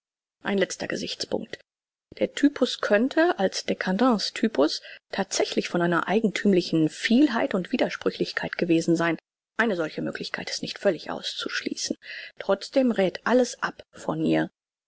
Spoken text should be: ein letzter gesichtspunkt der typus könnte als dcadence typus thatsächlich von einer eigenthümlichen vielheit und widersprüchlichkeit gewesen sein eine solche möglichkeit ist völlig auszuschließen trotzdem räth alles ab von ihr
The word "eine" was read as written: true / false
true